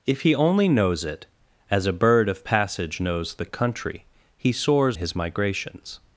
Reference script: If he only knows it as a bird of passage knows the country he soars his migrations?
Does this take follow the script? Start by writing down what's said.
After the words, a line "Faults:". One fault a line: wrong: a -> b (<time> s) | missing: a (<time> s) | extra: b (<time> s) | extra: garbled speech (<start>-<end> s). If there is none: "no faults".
If he only knows it as a bird of passage knows the country he soars his migrations?
Faults:
no faults